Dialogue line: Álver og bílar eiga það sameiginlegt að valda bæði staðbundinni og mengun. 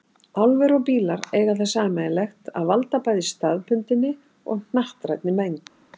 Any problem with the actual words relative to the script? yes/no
yes